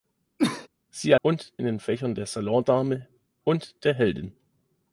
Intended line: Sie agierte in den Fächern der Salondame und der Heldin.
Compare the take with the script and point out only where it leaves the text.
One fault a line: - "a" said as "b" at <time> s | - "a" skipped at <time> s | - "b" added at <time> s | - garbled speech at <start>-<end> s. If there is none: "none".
- "agierte" said as "und" at 1.2 s